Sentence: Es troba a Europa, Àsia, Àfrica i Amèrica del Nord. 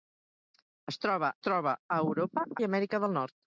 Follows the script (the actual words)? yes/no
no